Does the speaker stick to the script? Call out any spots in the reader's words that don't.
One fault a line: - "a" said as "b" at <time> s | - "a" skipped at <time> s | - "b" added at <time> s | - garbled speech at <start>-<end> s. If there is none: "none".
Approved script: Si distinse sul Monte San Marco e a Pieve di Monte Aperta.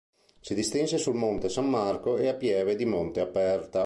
none